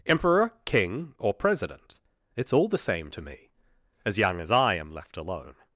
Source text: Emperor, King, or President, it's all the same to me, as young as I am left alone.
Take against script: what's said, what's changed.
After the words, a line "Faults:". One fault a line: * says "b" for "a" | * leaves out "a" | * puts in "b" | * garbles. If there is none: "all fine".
Emperor, King, or President, it's all the same to me, as young as I am left alone.
Faults:
all fine